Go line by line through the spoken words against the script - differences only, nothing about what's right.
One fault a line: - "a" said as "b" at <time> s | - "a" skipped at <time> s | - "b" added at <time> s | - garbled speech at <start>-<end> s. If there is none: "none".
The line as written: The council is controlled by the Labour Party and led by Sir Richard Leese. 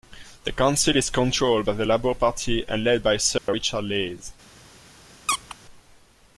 none